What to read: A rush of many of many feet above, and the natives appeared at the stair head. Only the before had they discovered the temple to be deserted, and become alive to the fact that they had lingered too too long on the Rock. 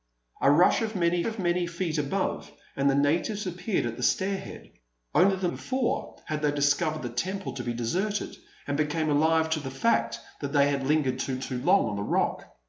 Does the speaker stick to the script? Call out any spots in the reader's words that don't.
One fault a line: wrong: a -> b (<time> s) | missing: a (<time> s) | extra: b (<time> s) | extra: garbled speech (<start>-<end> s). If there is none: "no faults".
no faults